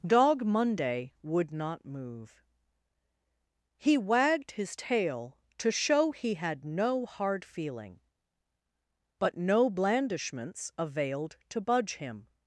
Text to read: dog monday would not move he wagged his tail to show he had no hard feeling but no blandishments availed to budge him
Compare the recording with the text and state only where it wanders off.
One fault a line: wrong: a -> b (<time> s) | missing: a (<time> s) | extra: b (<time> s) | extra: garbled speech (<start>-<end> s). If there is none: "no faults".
no faults